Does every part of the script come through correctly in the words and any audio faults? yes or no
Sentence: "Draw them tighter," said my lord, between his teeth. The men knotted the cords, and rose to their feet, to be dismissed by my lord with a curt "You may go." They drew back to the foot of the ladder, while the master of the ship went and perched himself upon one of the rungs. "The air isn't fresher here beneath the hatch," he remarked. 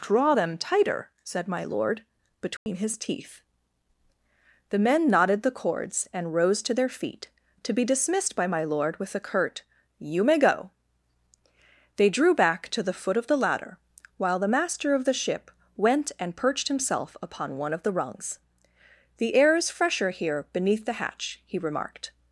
no